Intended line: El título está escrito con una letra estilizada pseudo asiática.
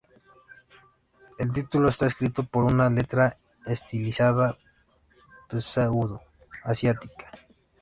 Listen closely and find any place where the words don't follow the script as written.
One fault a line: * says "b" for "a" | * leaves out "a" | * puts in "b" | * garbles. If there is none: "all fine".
all fine